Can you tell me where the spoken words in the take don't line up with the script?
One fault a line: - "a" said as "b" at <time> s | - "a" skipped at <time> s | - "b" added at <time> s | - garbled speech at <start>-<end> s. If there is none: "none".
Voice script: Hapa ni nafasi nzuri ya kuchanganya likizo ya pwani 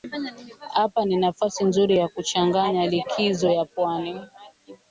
none